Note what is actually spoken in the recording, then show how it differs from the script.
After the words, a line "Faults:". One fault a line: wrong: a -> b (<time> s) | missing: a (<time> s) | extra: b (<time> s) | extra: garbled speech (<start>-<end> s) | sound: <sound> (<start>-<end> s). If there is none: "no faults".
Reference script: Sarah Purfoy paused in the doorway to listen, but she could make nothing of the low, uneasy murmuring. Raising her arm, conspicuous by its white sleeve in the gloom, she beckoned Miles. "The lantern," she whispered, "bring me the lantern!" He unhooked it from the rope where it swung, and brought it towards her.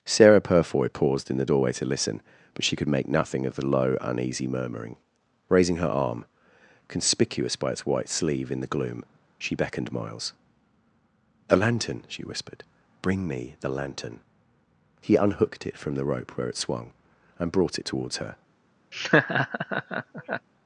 Sarah Purfoy paused in the doorway to listen, but she could make nothing of the low, uneasy murmuring. Raising her arm, conspicuous by its white sleeve in the gloom, she beckoned Miles. "A lantern," she whispered, "bring me the lantern!" He unhooked it from the rope where it swung, and brought it towards her.
Faults:
wrong: The -> A (11.5 s)
sound: laugh (18.9-20.5 s)